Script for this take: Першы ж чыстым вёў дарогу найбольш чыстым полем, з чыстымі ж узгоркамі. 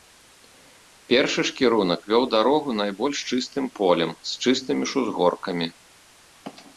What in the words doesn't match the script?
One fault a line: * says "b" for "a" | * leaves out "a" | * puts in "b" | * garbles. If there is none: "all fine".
* says "кірунак" for "чыстым"